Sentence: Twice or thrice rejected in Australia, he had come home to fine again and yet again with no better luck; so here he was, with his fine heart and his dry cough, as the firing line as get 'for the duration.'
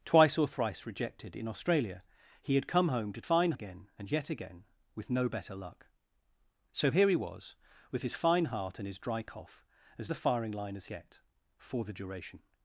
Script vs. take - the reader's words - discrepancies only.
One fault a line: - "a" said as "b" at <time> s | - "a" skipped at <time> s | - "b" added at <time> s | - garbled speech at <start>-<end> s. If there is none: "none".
none